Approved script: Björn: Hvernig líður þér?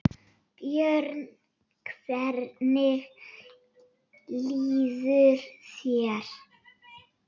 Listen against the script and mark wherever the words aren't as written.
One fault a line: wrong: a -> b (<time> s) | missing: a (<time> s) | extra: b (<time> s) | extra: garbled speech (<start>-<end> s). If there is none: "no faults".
no faults